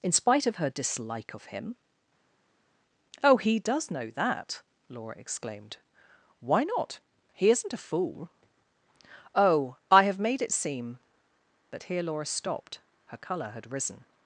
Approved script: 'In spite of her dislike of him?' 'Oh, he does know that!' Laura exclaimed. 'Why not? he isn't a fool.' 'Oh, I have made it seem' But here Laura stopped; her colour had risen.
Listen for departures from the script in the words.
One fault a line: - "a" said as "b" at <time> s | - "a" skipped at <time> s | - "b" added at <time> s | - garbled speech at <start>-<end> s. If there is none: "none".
none